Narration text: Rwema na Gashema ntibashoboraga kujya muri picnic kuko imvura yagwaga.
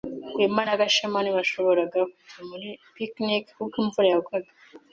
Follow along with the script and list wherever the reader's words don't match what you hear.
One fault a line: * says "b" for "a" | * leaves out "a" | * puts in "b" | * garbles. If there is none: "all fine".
all fine